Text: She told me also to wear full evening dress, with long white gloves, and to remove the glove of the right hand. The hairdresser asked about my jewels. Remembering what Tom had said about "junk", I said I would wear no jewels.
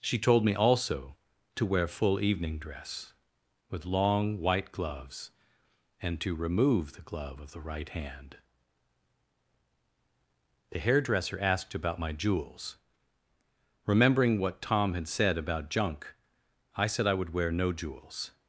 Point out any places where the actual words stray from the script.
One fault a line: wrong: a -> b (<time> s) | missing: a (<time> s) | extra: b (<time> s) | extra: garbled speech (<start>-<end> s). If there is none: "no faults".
no faults